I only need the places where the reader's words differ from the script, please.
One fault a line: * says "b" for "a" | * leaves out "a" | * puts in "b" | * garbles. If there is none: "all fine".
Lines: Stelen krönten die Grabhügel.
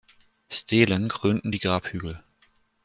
all fine